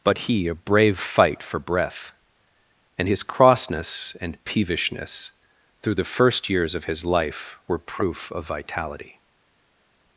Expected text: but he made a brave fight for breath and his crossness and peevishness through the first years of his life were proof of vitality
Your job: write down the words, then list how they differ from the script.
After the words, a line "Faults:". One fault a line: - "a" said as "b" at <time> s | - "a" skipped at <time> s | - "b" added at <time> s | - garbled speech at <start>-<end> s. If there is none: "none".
but he a brave fight for breath and his crossness and peevishness through the first years of his life were proof of vitality
Faults:
- "made" skipped at 0.5 s